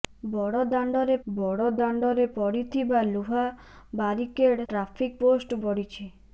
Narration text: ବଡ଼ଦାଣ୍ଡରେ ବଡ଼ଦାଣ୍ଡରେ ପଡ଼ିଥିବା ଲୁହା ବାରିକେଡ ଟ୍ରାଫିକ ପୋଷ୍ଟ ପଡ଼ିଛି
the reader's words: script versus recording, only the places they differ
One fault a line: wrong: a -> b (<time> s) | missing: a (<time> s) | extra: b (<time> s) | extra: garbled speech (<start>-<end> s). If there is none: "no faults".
no faults